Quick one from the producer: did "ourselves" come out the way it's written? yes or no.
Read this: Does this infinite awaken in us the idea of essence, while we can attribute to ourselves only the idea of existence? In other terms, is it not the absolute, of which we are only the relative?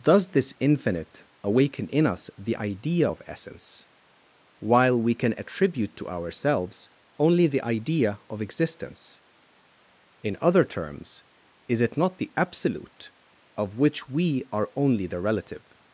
yes